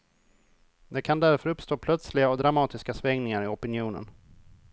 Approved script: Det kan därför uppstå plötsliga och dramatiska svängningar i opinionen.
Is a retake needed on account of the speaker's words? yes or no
no